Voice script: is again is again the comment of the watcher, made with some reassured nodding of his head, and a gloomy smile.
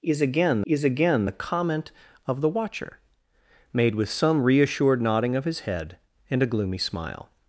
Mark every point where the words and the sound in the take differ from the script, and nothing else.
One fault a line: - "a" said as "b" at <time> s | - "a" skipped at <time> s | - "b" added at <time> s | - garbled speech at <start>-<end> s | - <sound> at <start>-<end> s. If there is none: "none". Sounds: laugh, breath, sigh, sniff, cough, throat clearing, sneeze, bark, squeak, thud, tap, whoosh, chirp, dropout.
none